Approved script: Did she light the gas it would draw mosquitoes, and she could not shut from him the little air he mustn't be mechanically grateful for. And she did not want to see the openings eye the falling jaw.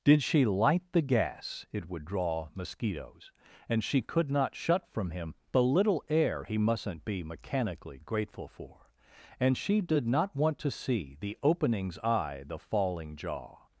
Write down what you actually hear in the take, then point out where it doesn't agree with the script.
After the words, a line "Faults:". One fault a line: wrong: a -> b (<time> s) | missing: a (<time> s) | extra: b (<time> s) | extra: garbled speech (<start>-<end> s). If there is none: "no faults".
Did she light the gas it would draw mosquitoes, and she could not shut from him the little air he mustn't be mechanically grateful for. And she did not want to see the openings eye the falling jaw.
Faults:
no faults